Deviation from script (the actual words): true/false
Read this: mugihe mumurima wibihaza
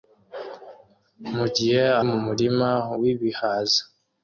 false